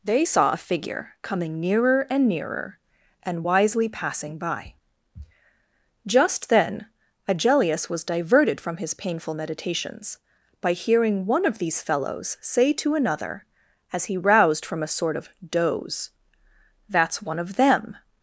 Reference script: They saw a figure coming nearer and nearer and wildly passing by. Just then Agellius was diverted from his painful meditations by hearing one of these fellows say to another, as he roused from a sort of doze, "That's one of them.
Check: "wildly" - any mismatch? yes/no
yes